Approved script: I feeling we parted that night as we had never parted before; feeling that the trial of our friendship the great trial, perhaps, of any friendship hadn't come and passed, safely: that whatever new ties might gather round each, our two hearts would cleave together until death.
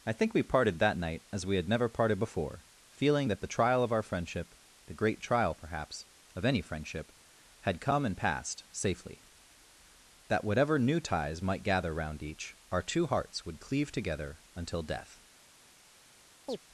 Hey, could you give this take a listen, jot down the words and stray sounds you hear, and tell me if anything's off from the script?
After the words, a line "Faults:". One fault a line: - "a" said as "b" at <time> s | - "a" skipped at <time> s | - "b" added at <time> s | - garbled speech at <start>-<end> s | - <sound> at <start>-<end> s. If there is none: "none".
I think we parted that night as we had never parted before; feeling that the trial of our friendship the great trial, perhaps, of any friendship had come and passed, safely: that whatever new ties might gather round each, our two hearts would cleave together until death.
Faults:
- "feeling" said as "think" at 0.1 s
- "hadn't" said as "had" at 7.6 s
- chirp at 16.5-16.6 s